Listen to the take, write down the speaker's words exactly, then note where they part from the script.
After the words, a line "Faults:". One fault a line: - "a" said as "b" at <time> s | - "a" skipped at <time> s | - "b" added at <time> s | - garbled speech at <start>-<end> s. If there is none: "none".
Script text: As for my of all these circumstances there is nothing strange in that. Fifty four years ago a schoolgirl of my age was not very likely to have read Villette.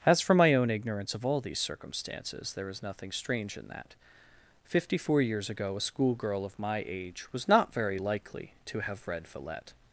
As for my own ignorance of all these circumstances there is nothing strange in that. Fifty four years ago a schoolgirl of my age was not very likely to have read Villette.
Faults:
- "own ignorance" added at 0.6 s